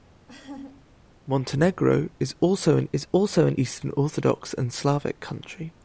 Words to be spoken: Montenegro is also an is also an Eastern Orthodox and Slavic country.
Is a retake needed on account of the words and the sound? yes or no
yes